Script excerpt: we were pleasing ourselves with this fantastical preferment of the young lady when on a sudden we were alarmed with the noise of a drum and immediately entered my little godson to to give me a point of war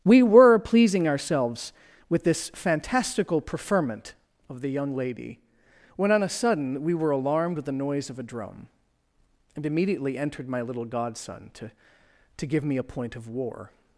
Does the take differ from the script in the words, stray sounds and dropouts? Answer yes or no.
no